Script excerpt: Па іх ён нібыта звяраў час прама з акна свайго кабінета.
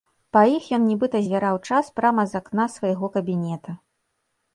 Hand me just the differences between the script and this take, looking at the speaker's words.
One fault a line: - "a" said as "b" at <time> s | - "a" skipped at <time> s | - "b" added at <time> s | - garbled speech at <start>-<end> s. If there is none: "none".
none